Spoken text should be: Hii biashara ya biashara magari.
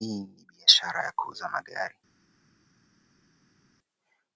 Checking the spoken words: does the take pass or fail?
fail